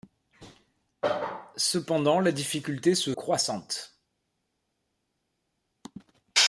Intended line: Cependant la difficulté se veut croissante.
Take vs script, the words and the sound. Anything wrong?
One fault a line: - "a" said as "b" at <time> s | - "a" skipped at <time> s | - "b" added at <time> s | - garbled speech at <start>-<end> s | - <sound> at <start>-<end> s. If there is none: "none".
- "veut" skipped at 3.1 s